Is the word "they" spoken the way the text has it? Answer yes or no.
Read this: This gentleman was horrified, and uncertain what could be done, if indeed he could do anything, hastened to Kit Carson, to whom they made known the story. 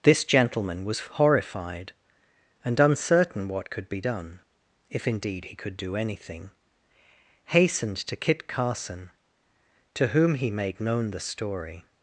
no